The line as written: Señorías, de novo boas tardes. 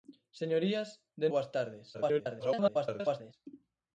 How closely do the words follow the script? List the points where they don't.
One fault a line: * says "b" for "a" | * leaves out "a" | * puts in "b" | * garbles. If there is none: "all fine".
* leaves out "novo"
* garbles